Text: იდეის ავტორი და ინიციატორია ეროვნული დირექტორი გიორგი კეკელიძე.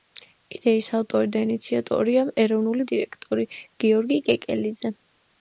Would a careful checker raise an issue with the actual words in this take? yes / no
no